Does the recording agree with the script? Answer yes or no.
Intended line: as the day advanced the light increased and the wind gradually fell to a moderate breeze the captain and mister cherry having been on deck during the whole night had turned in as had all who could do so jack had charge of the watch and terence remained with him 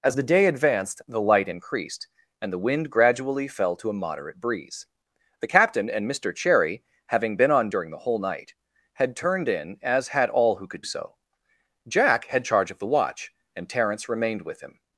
no